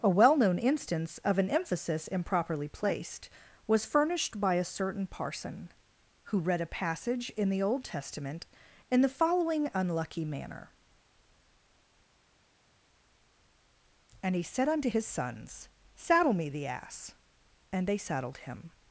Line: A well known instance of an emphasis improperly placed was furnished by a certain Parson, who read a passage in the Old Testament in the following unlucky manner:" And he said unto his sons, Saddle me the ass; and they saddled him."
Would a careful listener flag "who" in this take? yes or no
no